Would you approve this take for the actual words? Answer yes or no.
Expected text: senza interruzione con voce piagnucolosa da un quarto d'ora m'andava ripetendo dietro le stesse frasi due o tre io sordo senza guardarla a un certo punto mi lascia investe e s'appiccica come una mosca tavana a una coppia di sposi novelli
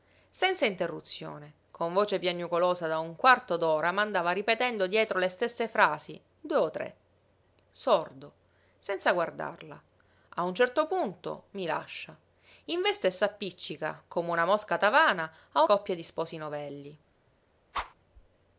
no